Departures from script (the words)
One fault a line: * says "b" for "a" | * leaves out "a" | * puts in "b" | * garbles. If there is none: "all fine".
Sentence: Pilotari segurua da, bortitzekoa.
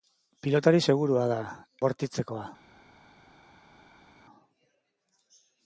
all fine